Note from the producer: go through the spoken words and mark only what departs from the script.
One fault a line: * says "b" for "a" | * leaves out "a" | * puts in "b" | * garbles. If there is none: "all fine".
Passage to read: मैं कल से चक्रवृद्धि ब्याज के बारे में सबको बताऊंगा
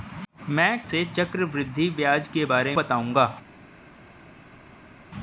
* leaves out "कल"
* leaves out "में सबको"